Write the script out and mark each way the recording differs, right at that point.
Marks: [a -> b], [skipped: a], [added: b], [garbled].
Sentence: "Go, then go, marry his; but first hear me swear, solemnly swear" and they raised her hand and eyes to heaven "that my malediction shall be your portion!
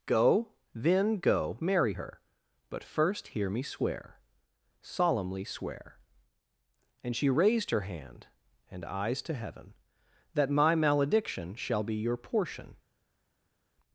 "Go, then go, marry [his; -> her] but first hear me swear, solemnly swear" and [they -> she] raised her hand and eyes to heaven "that my malediction shall be your portion!